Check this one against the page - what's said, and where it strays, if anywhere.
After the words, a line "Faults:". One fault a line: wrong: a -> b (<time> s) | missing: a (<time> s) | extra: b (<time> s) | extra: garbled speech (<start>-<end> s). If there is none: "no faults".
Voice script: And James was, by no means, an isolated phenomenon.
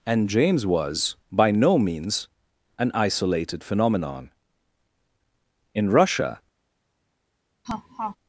And James was, by no means, an isolated phenomenon. In Russia
Faults:
extra: In Russia (5.8 s)